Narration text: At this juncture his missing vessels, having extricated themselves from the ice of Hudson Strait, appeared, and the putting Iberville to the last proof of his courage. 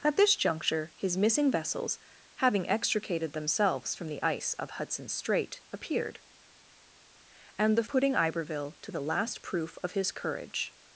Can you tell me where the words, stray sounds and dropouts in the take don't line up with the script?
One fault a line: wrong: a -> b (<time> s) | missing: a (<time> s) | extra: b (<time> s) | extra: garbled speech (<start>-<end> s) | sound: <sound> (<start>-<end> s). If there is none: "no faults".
no faults